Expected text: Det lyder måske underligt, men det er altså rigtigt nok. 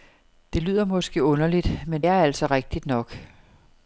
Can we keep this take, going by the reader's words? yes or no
no